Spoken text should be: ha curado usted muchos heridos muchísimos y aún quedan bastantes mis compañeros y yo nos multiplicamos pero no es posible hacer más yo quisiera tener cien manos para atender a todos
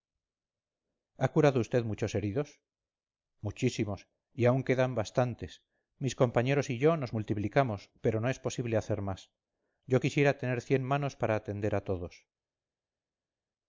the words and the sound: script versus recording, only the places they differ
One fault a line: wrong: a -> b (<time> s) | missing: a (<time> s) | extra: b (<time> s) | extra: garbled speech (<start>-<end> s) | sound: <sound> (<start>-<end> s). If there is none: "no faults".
no faults